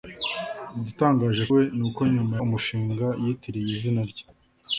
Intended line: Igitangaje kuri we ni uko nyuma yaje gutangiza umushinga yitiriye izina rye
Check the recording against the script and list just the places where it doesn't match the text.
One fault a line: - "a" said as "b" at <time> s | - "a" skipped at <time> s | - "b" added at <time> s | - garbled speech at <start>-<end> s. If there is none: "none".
- "kuri" skipped at 1.4 s
- "yaje gutangiza" skipped at 2.4 s